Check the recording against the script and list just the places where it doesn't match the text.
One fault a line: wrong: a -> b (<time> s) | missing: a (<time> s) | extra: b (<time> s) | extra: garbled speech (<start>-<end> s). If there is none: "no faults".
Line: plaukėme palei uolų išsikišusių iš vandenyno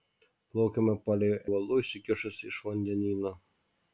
no faults